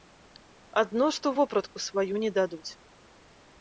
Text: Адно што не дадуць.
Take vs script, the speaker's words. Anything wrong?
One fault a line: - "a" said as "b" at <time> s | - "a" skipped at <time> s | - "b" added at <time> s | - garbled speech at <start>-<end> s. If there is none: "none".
- "вопратку сваю" added at 1.4 s